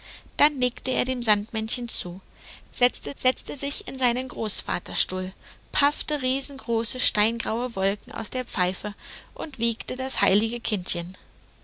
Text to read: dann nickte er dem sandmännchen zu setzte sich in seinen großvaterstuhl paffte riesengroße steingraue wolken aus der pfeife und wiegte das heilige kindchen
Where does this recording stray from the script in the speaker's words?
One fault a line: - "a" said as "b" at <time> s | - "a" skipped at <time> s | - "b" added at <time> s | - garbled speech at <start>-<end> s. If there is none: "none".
- "setzte" added at 3.1 s